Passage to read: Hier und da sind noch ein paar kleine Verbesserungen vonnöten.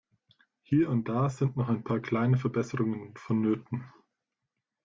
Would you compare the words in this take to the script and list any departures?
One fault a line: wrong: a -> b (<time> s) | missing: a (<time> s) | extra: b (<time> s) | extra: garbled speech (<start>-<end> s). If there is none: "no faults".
no faults